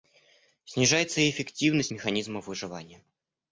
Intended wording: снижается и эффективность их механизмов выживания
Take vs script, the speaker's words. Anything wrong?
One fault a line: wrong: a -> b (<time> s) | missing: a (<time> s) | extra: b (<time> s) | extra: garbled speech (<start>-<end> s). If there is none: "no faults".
missing: их (1.9 s)